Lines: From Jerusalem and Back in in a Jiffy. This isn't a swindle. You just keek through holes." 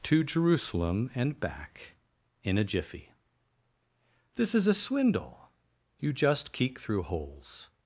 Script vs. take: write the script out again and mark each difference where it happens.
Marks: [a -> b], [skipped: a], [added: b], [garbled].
[From -> To] Jerusalem and Back in [skipped: in] a Jiffy. This [isn't -> is] a swindle. You just keek through holes."